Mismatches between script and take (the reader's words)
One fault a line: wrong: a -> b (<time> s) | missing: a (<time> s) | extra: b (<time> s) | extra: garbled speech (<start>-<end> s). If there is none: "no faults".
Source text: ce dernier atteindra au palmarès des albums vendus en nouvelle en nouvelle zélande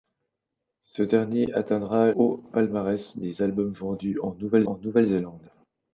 no faults